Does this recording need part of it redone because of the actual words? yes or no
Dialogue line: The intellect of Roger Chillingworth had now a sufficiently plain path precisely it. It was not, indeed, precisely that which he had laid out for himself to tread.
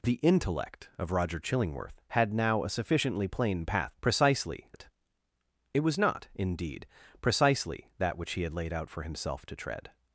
no